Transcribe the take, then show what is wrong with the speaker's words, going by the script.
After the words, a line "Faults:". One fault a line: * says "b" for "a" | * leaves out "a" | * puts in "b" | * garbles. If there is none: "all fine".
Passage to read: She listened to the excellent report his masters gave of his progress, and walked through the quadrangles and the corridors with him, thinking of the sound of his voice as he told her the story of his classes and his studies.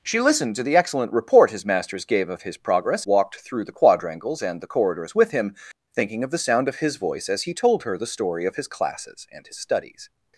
She listened to the excellent report his masters gave of his progress, walked through the quadrangles and the corridors with him, thinking of the sound of his voice as he told her the story of his classes and his studies.
Faults:
* leaves out "and"